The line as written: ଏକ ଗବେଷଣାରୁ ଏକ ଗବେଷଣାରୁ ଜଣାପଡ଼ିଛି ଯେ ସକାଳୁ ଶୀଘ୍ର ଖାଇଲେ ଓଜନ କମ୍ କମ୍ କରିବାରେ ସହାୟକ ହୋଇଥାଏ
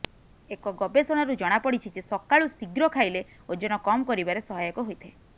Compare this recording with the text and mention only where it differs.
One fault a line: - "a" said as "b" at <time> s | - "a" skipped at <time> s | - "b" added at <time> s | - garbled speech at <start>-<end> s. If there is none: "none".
- "ଏକ ଗବେଷଣାରୁ" skipped at 1.3 s
- "କମ୍" skipped at 4.1 s